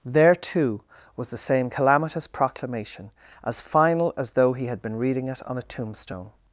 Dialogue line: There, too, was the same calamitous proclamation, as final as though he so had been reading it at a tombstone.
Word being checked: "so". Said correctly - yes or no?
no